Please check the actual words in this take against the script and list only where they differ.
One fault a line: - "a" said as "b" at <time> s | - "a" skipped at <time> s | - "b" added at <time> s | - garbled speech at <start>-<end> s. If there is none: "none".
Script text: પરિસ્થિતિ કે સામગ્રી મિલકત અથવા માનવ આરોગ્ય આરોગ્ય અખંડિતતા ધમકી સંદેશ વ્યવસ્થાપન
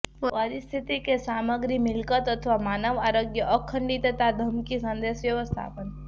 - "આરોગ્ય" skipped at 3.5 s